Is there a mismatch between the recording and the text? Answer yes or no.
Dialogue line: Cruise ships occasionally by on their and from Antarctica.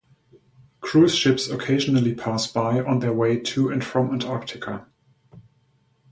yes